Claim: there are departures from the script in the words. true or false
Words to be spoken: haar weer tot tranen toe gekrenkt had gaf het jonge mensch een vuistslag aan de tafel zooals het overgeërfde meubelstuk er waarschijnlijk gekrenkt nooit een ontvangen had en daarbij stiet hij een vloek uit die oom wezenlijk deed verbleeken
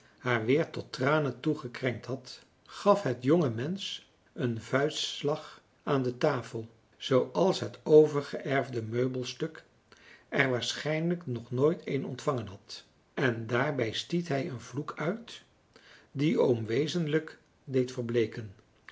true